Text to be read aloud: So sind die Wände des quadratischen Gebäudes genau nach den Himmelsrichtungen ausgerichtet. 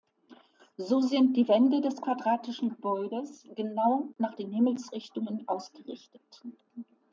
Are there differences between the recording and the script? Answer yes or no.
no